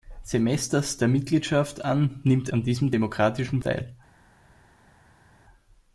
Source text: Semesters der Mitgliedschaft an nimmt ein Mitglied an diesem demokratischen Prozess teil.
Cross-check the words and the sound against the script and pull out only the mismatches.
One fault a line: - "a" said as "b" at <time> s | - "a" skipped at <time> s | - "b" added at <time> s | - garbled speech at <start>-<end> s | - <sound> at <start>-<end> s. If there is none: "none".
- "ein Mitglied" skipped at 2.5 s
- "Prozess" skipped at 3.6 s